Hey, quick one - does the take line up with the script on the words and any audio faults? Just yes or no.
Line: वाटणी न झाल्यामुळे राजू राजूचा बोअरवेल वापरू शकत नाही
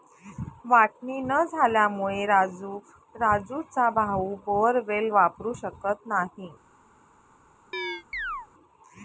no